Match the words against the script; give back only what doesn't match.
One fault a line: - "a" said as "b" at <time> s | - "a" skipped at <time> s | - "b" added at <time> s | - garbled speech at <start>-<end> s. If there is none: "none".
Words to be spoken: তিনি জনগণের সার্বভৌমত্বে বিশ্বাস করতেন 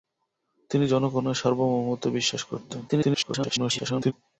- garbled speech at 2.9-4.1 s